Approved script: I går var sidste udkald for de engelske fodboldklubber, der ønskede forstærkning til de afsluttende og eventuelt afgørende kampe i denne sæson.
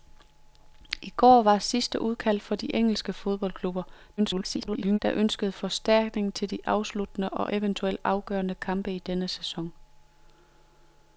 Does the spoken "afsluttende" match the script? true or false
true